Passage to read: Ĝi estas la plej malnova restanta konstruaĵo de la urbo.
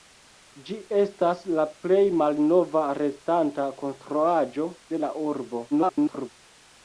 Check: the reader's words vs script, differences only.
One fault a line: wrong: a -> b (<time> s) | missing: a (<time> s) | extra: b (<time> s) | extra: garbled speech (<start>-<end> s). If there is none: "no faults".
extra: garbled speech (5.7-6.3 s)